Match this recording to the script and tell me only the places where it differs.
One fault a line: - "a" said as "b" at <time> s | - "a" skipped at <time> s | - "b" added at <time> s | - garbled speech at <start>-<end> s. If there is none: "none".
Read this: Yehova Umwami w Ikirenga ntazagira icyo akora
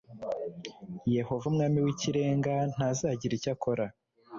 none